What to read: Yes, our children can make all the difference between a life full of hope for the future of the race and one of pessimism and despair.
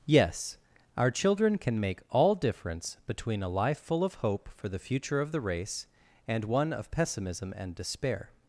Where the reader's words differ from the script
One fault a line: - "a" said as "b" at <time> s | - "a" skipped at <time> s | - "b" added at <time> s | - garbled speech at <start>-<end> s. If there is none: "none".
- "the" skipped at 2.4 s